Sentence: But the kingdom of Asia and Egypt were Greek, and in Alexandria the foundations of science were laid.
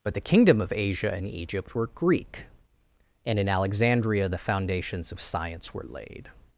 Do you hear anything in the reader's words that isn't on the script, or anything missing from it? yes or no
no